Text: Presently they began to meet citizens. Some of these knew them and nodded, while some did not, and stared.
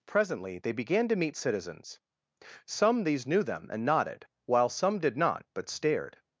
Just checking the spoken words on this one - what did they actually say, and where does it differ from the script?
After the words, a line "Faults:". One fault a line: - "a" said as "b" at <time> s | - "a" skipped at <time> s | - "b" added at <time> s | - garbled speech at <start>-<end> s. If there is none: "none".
Presently they began to meet citizens. Some these knew them and nodded, while some did not, but stared.
Faults:
- "of" skipped at 3.0 s
- "and" said as "but" at 5.5 s